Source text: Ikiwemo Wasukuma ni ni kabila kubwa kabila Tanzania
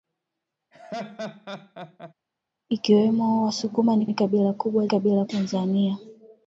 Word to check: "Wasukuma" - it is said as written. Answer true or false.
true